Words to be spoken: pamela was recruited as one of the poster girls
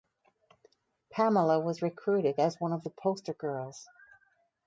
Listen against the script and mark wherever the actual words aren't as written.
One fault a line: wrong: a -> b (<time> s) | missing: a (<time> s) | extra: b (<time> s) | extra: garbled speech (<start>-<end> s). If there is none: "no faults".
no faults